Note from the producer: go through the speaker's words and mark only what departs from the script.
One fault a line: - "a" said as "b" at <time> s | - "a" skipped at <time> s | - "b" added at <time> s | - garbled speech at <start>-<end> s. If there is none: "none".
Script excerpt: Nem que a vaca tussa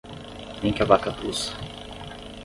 none